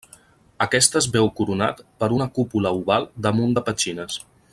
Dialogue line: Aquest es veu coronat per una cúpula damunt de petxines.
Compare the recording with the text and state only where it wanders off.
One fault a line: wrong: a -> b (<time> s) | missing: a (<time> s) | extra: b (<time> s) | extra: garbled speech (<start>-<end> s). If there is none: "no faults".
extra: oval (2.8 s)